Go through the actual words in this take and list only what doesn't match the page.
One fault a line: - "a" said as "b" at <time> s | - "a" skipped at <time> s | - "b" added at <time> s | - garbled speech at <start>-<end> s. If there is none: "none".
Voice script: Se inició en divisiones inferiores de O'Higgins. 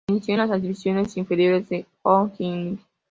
- "las" added at 0.4 s